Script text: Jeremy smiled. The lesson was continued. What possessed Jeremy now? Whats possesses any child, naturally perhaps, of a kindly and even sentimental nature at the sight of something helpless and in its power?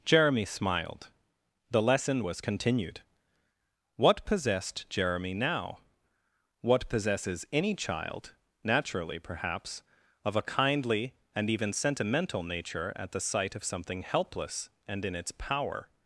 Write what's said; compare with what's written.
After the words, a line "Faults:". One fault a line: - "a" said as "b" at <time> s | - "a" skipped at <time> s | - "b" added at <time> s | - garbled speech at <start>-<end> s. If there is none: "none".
Jeremy smiled. The lesson was continued. What possessed Jeremy now? What possesses any child, naturally perhaps, of a kindly and even sentimental nature at the sight of something helpless and in its power?
Faults:
- "Whats" said as "What" at 6.6 s